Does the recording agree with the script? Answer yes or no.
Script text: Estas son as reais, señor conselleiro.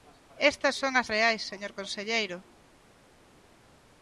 yes